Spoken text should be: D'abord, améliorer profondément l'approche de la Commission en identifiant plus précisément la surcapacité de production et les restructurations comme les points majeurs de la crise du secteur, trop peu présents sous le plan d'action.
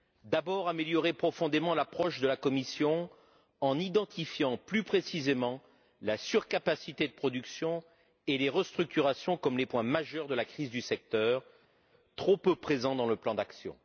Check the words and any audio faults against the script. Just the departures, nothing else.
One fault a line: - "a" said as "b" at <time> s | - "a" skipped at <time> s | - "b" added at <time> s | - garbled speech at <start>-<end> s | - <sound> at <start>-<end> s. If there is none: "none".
- "sous" said as "dans" at 13.0 s